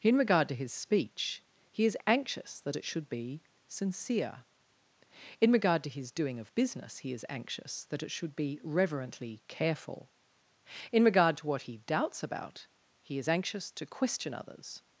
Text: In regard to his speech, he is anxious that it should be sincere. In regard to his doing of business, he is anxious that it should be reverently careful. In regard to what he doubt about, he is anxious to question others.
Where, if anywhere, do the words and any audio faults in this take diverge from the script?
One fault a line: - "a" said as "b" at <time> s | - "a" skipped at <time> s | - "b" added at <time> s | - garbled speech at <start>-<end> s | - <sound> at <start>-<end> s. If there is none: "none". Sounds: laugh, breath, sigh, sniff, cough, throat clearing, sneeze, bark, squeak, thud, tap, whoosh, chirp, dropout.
- "doubt" said as "doubts" at 11.8 s